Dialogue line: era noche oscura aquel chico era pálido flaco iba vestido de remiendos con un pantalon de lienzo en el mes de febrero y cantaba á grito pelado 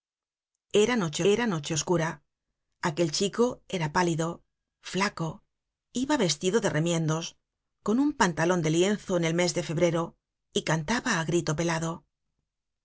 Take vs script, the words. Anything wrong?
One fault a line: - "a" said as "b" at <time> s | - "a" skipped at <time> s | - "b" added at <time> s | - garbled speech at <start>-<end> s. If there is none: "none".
- "era noche" added at 1.3 s